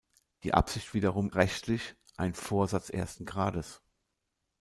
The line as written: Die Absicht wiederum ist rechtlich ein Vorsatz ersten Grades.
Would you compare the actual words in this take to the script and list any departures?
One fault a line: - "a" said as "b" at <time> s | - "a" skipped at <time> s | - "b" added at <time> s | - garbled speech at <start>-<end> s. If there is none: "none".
- "ist" skipped at 1.3 s